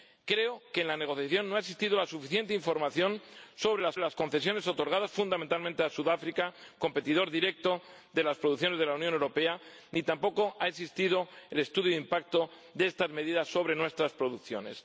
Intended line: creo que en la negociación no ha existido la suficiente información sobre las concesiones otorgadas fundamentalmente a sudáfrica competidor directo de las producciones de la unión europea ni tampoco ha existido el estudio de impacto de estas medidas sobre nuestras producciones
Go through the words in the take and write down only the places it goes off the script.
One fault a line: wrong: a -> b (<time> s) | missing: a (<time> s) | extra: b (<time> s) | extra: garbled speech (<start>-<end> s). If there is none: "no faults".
extra: las (4.0 s)